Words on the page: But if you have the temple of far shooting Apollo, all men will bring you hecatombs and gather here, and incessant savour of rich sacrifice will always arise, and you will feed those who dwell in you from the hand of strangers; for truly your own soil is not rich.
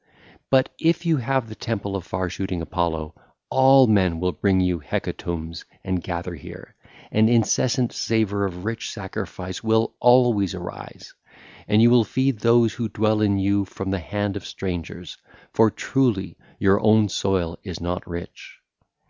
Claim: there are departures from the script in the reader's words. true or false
false